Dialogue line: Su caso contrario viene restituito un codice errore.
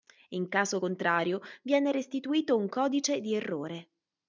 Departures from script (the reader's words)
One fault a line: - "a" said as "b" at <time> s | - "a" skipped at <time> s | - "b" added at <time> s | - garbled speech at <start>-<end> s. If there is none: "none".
- "Su" said as "In" at 0.3 s
- "di" added at 3.2 s